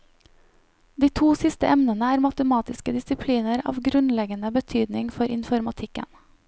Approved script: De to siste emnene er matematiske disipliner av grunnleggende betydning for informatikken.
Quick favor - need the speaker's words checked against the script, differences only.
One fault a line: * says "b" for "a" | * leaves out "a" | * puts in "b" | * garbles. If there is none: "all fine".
all fine